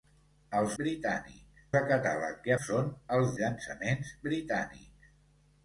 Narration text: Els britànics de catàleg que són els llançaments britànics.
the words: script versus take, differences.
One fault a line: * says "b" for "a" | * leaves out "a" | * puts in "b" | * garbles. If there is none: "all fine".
all fine